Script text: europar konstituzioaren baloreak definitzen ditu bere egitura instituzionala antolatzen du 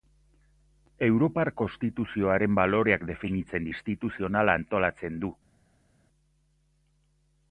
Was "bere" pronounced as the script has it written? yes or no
no